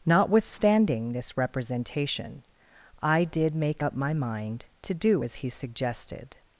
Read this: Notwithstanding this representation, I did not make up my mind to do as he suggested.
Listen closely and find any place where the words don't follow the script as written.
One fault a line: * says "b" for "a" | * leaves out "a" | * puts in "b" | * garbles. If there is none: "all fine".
* leaves out "not"